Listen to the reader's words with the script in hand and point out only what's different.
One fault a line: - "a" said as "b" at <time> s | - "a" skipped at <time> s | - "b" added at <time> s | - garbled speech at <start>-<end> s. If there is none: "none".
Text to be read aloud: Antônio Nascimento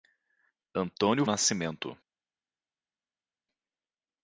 none